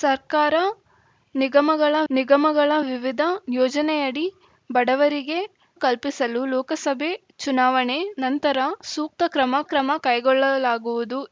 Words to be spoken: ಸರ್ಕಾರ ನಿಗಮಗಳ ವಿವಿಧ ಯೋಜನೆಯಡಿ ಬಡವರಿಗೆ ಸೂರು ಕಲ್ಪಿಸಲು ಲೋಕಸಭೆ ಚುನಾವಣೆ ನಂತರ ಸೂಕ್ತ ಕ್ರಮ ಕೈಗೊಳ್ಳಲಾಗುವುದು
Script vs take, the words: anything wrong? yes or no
yes